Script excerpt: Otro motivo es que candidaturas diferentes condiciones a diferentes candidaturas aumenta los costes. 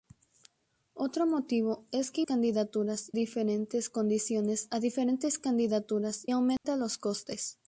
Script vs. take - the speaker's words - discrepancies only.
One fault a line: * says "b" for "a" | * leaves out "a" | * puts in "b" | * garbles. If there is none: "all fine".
all fine